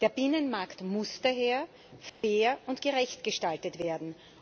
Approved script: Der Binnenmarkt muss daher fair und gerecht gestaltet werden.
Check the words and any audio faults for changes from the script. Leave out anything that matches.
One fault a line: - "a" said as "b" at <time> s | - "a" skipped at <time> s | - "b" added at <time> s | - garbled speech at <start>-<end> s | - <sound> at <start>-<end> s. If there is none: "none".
- dropout at 2.1-2.2 s